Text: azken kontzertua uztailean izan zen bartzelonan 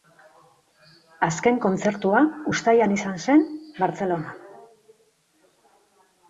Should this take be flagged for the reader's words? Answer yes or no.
no